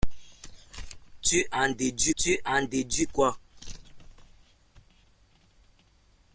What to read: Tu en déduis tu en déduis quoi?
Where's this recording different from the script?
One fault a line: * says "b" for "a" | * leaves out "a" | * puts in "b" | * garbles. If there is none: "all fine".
all fine